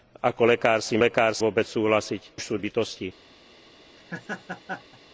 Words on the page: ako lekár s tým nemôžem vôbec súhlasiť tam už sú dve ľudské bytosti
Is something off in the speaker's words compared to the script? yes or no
yes